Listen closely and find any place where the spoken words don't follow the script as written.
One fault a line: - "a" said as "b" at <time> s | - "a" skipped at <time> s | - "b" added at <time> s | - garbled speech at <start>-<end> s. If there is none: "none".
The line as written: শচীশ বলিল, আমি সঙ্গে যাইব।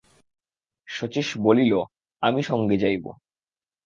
none